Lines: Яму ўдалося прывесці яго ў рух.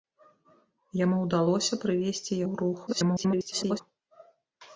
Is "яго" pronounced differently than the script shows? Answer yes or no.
yes